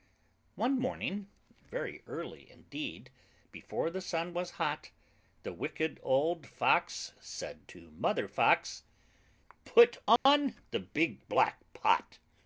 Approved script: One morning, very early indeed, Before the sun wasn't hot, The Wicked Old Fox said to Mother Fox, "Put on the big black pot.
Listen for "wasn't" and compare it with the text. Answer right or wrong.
wrong